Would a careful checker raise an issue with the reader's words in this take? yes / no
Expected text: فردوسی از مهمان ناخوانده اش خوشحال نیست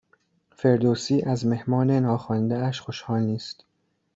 no